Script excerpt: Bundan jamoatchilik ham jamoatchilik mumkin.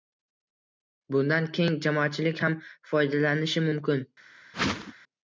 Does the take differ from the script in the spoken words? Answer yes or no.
yes